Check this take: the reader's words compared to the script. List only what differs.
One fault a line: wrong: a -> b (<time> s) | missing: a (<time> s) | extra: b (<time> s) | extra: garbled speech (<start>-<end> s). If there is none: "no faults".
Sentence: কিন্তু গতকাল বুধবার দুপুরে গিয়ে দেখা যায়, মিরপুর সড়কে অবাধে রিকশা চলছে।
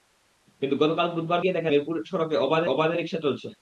missing: দুপুরে (1.4 s)
missing: যায় (1.7 s)
extra: অবাধে (2.6 s)